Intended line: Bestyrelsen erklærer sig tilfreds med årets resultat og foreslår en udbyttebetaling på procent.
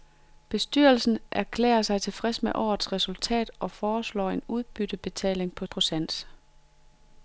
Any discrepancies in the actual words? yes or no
no